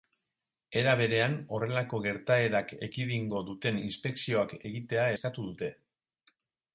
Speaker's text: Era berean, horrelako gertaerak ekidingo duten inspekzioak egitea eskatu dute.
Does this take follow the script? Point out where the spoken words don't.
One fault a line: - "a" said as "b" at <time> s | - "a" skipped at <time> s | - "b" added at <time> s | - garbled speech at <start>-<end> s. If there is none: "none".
none